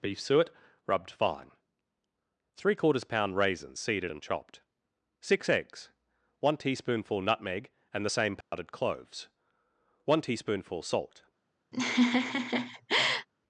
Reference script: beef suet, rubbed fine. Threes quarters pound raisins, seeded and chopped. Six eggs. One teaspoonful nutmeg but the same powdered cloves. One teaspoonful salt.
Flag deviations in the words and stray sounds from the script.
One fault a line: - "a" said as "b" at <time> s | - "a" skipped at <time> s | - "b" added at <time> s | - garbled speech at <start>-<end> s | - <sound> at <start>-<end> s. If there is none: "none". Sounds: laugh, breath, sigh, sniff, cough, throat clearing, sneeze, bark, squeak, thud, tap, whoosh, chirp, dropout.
- "Threes" said as "Three" at 2.5 s
- "but" said as "and" at 7.9 s
- dropout at 8.4-8.5 s
- laugh at 11.7-13.3 s